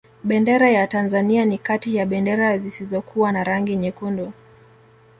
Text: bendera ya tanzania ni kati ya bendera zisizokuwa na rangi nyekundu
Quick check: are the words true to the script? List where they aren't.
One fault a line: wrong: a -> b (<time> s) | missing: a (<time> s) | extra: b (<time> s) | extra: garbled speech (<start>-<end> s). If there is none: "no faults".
no faults